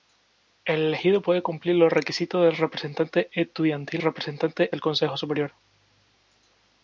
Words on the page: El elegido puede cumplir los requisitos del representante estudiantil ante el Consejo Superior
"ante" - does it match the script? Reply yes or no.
no